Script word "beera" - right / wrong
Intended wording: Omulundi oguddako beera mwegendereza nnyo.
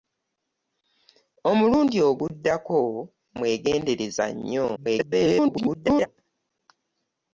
wrong